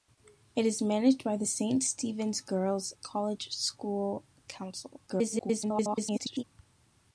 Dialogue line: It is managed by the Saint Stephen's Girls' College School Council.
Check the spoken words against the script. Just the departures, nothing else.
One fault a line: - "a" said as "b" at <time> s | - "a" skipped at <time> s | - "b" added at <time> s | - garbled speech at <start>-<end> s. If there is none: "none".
- garbled speech at 5.1-6.4 s